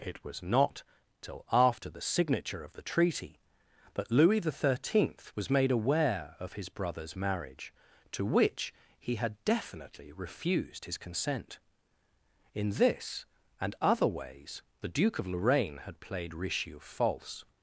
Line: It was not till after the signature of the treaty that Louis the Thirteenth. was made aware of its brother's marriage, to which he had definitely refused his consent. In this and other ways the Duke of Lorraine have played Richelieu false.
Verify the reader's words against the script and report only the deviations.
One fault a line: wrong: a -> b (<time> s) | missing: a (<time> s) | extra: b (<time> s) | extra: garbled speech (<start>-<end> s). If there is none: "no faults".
wrong: its -> his (6.5 s)
wrong: have -> had (15.8 s)